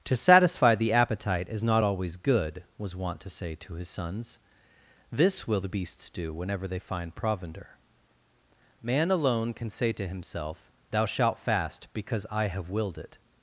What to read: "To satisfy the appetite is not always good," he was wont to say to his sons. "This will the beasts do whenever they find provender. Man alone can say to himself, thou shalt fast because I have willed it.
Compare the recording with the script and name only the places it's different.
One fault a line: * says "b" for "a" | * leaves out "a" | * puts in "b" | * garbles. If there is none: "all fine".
* leaves out "he"